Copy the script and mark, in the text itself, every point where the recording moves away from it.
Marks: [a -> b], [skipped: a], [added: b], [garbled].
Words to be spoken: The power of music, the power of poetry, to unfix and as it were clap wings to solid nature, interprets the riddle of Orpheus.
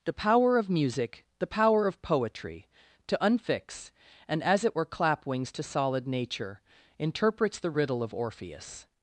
The power of music, the power of poetry, to unfix and as it were clap wings to solid nature, interprets the riddle of Orpheus.